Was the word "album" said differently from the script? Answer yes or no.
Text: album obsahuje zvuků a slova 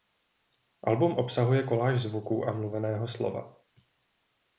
no